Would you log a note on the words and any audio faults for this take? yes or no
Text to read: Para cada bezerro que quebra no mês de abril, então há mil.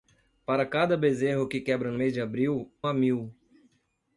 yes